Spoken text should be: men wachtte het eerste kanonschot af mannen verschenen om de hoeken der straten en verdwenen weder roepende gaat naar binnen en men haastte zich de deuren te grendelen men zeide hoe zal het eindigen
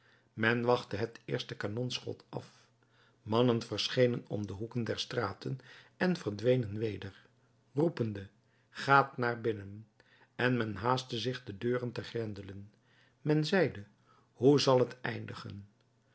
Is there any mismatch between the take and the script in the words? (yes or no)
no